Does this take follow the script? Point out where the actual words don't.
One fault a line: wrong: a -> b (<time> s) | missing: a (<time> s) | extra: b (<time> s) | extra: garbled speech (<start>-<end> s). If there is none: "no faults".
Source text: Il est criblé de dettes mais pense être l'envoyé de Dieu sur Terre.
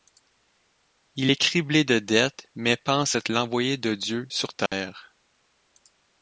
no faults